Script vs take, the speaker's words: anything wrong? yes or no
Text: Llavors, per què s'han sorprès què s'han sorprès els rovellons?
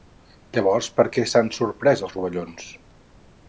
yes